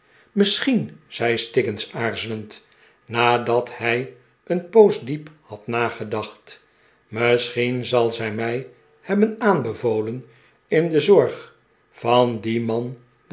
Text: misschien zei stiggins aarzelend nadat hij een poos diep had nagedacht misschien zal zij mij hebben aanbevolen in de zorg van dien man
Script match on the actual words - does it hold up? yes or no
yes